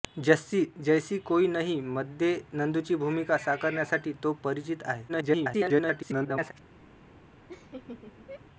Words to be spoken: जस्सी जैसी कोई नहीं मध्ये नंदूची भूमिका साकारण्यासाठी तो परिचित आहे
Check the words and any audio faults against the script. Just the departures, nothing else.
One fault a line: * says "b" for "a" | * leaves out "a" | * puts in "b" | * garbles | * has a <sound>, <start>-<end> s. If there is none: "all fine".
* garbles
* has a laugh, 7.5-8.4 s